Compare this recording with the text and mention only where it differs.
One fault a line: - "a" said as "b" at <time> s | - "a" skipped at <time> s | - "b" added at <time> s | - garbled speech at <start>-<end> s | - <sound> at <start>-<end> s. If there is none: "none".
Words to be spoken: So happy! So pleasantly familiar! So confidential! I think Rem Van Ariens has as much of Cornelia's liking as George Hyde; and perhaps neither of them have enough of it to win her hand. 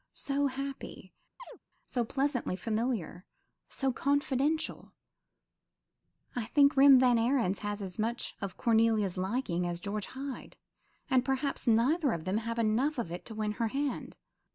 - chirp at 1.4-1.6 s